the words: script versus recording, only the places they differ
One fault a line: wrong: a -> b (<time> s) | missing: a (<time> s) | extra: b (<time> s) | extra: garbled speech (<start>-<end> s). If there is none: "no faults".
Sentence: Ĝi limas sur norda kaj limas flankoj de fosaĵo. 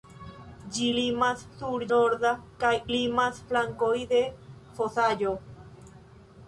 no faults